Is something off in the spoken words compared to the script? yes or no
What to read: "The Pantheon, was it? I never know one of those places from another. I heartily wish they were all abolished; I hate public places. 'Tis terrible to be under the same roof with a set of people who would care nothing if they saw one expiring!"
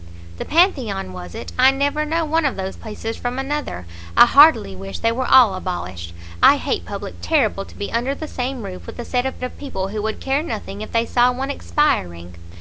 yes